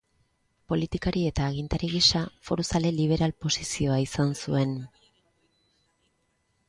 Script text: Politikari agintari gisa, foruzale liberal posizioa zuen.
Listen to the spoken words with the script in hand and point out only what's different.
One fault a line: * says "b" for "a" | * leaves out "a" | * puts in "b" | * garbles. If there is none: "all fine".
* puts in "eta"
* puts in "izan"